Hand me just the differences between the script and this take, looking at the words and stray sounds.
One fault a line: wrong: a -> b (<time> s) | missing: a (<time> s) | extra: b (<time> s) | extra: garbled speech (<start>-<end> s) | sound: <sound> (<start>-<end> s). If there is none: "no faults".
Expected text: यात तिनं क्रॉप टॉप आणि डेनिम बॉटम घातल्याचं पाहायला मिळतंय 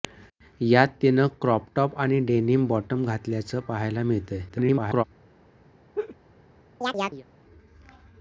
extra: garbled speech (4.5-5.0 s)
sound: laugh (5.9-6.2 s)
sound: chirp (6.8-7.3 s)